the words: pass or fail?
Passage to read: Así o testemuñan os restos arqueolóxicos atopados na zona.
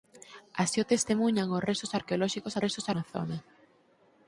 fail